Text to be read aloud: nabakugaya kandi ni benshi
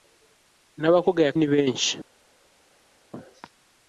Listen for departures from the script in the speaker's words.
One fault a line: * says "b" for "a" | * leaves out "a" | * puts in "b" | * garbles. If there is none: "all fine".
* leaves out "kandi"